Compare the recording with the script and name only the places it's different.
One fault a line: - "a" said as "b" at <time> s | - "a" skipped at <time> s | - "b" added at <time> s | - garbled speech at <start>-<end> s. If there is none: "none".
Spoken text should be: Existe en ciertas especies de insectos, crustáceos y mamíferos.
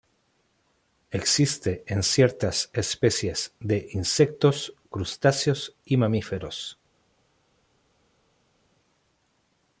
none